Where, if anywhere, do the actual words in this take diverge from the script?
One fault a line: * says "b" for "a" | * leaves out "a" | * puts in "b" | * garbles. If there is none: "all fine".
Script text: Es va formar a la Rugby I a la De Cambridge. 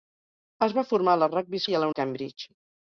all fine